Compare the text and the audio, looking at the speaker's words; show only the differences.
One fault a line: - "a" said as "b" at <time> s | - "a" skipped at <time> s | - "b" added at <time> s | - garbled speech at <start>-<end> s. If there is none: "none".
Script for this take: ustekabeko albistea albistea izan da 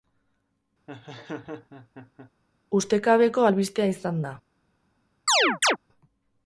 - "albistea" skipped at 3.9 s